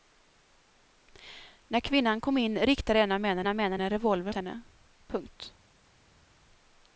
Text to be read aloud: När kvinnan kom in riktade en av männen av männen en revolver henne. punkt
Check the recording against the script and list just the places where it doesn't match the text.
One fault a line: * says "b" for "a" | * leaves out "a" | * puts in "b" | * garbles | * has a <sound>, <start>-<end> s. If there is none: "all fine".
all fine